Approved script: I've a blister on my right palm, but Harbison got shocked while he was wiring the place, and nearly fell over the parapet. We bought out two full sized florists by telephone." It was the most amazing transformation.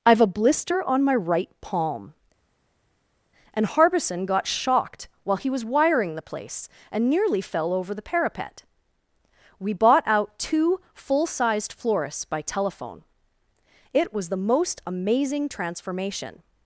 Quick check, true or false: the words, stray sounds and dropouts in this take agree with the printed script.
false